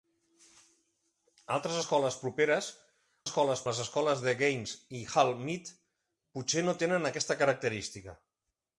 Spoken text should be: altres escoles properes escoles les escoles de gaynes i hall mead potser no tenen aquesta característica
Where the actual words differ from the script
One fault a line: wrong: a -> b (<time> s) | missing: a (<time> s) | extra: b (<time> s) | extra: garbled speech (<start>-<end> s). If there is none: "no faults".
no faults